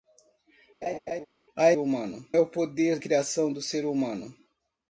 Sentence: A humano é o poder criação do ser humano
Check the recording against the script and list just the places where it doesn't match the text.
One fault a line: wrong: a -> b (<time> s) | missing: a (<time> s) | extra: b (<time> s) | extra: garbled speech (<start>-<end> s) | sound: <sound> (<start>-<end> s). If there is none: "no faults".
sound: laugh (0.8-1.3 s)